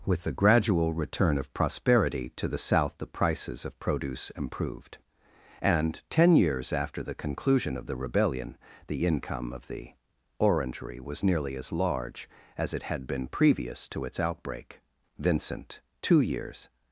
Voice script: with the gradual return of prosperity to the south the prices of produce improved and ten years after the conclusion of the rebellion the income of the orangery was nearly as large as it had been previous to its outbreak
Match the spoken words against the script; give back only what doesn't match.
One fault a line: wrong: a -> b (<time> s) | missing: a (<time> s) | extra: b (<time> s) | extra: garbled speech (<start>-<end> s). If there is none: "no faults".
extra: vincent two years (15.2 s)